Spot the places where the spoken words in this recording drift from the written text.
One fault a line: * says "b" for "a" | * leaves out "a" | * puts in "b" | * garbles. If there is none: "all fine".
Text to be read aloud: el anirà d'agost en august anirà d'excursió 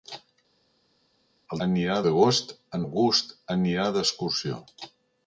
all fine